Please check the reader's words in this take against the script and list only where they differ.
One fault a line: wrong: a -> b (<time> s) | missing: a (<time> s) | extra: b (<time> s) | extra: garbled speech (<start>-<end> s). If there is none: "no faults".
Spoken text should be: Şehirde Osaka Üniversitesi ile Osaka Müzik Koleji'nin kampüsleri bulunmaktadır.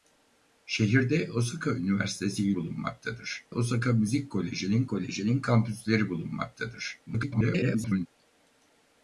wrong: ile -> bulunmaktadır (2.5 s)
extra: Koleji'nin (4.9 s)
extra: garbled speech (7.1-8.1 s)